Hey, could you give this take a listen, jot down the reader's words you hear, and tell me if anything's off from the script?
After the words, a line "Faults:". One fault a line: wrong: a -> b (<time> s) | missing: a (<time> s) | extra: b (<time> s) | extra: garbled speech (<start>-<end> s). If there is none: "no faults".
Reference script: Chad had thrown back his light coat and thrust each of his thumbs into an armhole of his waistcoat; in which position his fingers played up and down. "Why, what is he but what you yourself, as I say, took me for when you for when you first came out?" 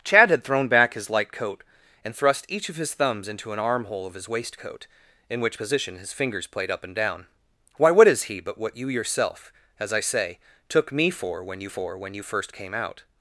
Chad had thrown back his light coat and thrust each of his thumbs into an armhole of his waistcoat; in which position his fingers played up and down. "Why, what is he but what you yourself, as I say, took me for when you for when you first came out?"
Faults:
no faults